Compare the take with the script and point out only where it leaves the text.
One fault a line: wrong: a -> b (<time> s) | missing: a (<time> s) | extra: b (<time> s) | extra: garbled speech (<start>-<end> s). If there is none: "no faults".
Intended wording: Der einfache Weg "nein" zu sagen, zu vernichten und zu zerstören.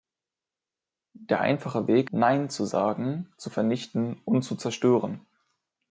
no faults